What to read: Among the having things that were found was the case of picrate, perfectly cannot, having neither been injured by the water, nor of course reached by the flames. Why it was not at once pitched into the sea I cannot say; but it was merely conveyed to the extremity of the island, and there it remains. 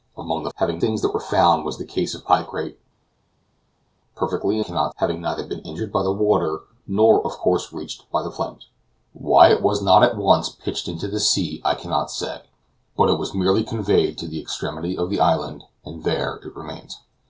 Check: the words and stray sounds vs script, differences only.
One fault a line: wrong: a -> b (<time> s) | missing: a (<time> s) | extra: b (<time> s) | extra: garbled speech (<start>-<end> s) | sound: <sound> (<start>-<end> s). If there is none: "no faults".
no faults